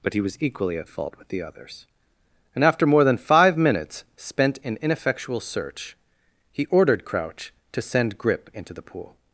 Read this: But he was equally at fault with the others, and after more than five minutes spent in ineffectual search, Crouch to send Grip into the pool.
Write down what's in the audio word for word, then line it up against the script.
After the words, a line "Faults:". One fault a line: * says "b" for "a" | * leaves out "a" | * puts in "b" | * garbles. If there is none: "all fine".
But he was equally at fault with the others, and after more than five minutes spent in ineffectual search, he ordered Crouch to send Grip into the pool.
Faults:
* puts in "he ordered"